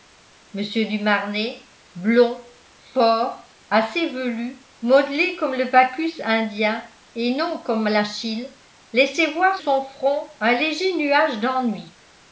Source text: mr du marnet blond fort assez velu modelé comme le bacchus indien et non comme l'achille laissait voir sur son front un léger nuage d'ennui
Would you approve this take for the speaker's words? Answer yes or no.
no